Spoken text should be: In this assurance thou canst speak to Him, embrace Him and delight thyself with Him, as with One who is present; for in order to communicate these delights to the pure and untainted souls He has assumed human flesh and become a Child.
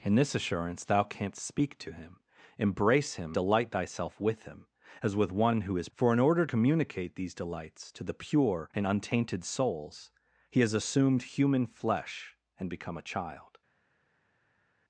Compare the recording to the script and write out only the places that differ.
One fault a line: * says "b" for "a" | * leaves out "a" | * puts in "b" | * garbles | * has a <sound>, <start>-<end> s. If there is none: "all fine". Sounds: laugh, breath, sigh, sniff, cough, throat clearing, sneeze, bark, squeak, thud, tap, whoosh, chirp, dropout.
* leaves out "and"
* leaves out "present"
* leaves out "to"